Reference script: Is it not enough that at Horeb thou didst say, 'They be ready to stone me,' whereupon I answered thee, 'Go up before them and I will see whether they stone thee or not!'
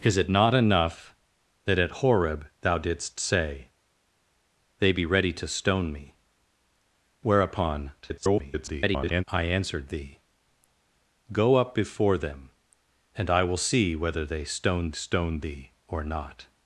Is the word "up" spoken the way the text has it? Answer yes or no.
yes